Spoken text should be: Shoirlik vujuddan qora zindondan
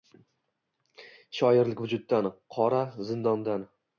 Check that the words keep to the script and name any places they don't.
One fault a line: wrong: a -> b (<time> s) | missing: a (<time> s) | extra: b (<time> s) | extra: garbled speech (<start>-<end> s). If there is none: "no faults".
no faults